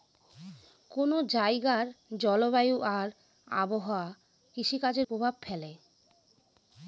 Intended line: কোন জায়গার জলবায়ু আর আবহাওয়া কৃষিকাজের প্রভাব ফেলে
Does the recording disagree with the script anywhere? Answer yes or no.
no